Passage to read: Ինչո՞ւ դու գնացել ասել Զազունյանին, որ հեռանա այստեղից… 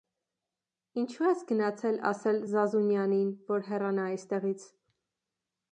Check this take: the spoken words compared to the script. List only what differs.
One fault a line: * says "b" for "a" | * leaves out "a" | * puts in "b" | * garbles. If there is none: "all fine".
* says "ես" for "դու"